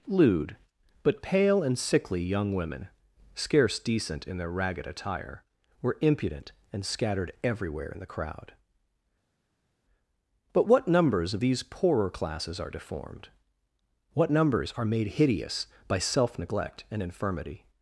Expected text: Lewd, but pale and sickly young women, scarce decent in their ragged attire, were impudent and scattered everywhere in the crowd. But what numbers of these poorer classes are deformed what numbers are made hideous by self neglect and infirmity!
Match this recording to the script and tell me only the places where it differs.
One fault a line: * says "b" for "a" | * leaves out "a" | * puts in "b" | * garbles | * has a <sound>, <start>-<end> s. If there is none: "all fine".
all fine